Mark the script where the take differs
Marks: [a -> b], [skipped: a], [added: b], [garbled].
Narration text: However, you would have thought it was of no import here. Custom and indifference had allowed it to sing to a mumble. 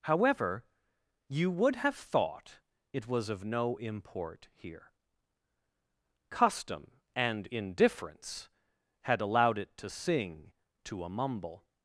However, you would have thought it was of no import here. Custom and indifference had allowed it to sing to a mumble.